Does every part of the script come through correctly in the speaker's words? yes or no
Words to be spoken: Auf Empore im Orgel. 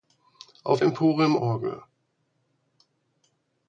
yes